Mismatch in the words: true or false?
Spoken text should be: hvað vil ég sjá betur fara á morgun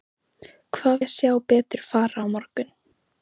true